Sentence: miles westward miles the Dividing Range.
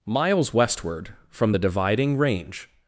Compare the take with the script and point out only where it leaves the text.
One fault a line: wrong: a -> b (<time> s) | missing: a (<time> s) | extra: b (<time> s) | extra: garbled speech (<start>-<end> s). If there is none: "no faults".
wrong: miles -> from (1.3 s)